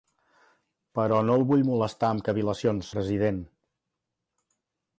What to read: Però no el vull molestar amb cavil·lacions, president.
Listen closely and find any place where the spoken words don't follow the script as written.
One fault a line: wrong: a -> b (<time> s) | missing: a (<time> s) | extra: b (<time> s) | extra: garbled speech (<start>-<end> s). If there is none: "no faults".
no faults